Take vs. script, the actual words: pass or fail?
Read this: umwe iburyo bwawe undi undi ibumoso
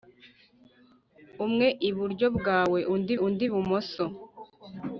pass